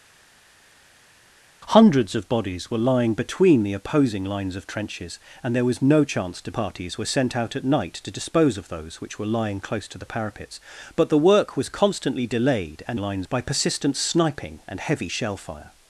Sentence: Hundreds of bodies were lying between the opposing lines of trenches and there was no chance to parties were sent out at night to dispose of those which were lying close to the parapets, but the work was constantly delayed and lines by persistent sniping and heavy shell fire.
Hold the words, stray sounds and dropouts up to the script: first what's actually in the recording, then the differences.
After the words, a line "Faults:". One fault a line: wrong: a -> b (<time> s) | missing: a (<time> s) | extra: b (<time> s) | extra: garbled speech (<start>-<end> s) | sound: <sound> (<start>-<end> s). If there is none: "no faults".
Hundreds of bodies were lying between the opposing lines of trenches and there was no chance to parties were sent out at night to dispose of those which were lying close to the parapets, but the work was constantly delayed and lines by persistent sniping and heavy shell fire.
Faults:
no faults